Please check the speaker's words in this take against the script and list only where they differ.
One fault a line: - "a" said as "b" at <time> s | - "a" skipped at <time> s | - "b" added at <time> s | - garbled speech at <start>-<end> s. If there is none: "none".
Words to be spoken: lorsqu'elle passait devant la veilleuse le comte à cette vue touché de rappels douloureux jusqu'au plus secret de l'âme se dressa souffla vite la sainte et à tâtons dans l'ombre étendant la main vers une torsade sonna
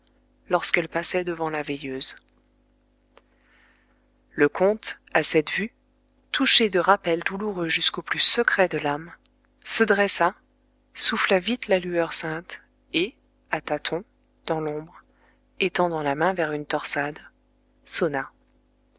- "lueur" added at 11.8 s